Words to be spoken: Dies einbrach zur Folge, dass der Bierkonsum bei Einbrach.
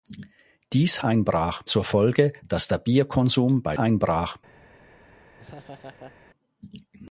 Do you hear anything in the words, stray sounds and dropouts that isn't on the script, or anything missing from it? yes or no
yes